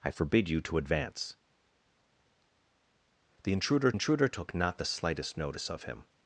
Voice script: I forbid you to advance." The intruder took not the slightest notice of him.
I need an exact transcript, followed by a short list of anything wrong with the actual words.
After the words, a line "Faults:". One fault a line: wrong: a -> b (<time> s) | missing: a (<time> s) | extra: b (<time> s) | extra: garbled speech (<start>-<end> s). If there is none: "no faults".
I forbid you to advance." The intruder intruder took not the slightest notice of him.
Faults:
extra: intruder (3.9 s)